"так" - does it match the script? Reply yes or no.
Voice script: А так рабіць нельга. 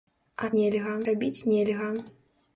no